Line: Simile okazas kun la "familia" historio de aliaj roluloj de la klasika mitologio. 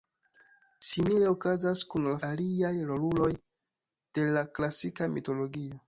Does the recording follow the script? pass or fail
fail